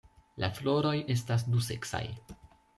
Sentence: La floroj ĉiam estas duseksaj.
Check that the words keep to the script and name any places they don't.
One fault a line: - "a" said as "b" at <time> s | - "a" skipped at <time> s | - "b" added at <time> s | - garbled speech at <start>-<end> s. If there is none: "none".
- "ĉiam" skipped at 0.9 s